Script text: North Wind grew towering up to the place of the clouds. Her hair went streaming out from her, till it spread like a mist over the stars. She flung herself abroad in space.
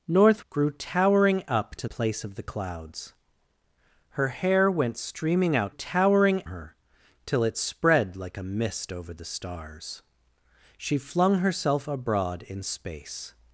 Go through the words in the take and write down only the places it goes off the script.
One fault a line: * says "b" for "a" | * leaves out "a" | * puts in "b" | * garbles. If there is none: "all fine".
* leaves out "Wind"
* leaves out "the"
* says "towering" for "from"